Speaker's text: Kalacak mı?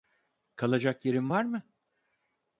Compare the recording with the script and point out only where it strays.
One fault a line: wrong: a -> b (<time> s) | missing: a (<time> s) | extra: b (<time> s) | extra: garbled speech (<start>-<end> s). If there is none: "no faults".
extra: yerin var (1.1 s)